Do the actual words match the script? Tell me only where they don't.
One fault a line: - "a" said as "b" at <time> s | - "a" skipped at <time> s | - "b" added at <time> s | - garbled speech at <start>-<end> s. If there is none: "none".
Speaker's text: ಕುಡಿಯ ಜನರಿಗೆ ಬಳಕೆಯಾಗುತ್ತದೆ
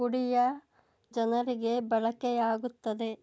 none